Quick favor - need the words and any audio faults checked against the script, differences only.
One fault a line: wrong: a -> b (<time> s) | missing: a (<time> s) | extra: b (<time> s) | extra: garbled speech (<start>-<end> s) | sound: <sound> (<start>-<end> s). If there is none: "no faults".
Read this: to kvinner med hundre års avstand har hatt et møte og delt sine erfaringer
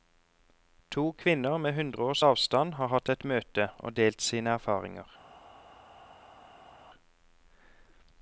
no faults